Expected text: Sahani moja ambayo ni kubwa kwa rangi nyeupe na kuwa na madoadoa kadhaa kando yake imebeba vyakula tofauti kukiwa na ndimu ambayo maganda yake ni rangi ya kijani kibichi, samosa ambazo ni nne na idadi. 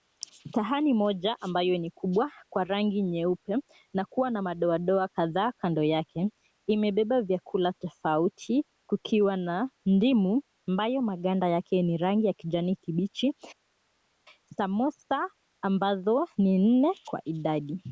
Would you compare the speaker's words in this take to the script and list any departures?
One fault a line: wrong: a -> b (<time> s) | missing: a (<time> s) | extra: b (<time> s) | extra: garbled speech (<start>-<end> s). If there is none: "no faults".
wrong: na -> kwa (17.1 s)